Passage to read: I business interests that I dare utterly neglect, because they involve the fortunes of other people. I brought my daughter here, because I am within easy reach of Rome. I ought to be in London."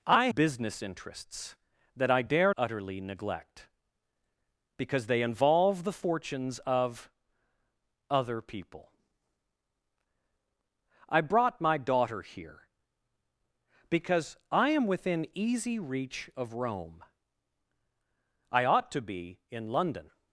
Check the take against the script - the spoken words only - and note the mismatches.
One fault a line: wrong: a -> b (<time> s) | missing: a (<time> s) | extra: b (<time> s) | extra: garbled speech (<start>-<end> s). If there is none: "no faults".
no faults